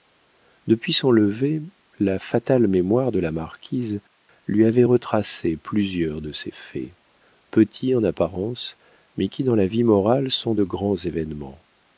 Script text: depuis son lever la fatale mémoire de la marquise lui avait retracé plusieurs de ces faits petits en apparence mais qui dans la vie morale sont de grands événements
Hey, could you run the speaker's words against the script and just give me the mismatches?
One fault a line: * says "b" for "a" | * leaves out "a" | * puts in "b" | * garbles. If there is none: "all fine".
all fine